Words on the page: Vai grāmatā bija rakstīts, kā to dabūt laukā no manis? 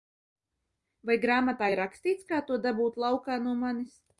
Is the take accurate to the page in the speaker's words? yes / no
no